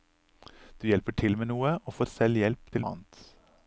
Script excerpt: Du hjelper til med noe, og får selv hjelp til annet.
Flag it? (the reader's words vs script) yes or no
no